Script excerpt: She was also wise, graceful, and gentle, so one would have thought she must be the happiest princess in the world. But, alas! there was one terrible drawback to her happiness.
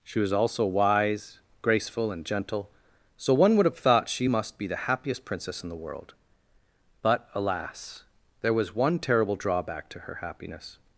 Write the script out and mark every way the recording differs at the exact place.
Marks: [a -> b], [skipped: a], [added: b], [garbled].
She was also wise, graceful, and gentle, so one would have thought she must be the happiest princess in the world. But, alas! there was one terrible drawback to her happiness.